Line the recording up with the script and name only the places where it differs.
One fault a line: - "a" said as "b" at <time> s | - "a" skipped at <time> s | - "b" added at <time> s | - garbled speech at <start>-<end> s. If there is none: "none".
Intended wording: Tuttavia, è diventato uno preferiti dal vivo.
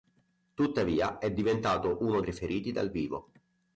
none